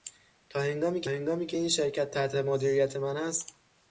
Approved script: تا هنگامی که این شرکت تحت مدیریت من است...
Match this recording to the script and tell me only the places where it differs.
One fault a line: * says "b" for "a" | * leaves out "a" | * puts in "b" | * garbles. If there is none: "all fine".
* puts in "هنگامی که"